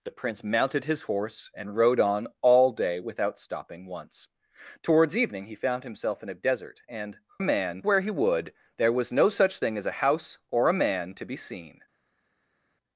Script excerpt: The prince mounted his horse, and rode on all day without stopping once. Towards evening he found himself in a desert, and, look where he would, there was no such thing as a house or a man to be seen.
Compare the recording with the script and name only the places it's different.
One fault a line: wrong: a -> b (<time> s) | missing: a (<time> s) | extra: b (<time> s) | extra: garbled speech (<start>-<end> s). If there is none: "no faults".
wrong: look -> man (7.4 s)